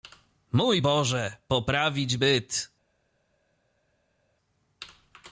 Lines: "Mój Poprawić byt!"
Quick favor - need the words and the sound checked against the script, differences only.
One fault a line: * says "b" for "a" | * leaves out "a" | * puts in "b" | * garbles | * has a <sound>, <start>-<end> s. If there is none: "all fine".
* puts in "Boże"